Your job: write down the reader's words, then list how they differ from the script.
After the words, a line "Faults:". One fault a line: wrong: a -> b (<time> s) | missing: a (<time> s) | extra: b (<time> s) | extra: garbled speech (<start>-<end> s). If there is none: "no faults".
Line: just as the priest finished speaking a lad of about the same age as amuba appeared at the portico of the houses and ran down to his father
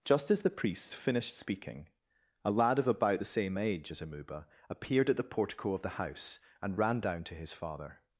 just as the priest finished speaking a lad of about the same age as amuba appeared at the portico of the house and ran down to his father
Faults:
wrong: houses -> house (5.9 s)